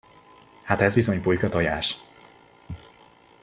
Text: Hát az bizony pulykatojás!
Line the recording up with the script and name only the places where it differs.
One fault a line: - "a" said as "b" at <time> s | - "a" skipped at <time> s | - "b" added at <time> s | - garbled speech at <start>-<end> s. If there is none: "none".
- "az" said as "ez" at 0.8 s